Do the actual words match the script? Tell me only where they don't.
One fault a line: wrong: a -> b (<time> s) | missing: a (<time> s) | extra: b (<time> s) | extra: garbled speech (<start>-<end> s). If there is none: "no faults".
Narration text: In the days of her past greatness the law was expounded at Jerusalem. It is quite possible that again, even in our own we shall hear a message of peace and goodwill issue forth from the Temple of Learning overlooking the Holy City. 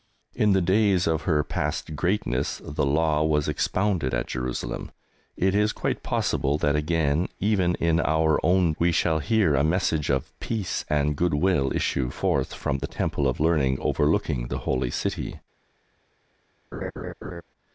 no faults